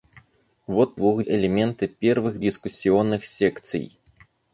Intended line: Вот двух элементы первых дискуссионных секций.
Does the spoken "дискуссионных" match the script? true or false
true